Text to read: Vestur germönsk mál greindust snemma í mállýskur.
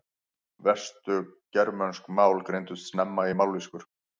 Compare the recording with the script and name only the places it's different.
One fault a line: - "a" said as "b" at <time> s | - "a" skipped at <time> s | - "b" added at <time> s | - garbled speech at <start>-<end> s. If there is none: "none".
none